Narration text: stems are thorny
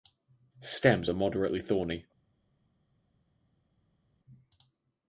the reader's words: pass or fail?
fail